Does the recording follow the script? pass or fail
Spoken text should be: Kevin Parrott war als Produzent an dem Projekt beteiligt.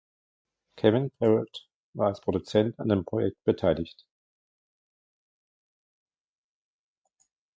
pass